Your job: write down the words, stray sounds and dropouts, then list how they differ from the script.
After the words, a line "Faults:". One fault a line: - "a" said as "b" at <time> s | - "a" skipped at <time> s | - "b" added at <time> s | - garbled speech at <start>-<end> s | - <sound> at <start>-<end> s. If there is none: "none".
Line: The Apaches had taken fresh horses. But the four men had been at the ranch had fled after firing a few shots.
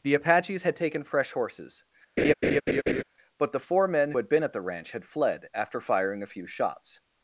The Apaches had taken fresh horses. But the four men had been at the ranch had fled after firing a few shots.
Faults:
- laugh at 2.2-3.0 s